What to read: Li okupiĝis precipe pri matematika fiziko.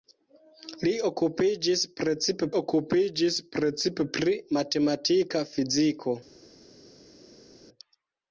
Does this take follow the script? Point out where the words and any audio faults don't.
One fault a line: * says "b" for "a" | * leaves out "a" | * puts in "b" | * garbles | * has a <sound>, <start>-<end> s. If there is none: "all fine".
* puts in "okupiĝis precipe"